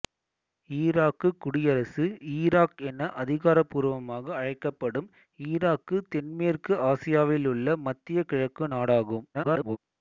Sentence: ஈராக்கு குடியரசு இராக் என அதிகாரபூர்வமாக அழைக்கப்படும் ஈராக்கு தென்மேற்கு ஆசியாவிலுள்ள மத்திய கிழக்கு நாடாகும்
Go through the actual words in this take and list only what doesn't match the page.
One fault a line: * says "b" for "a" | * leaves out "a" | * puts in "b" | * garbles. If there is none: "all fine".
* garbles